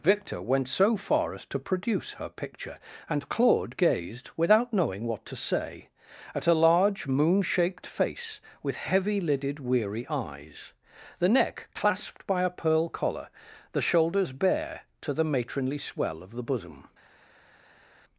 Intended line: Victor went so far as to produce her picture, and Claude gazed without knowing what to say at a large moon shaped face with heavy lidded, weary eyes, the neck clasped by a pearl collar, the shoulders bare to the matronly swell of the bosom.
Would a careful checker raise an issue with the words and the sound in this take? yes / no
no